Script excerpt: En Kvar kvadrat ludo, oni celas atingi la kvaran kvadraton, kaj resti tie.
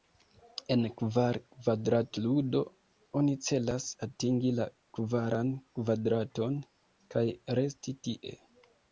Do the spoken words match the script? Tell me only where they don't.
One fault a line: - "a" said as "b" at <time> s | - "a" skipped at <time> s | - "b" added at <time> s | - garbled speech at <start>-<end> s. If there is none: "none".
none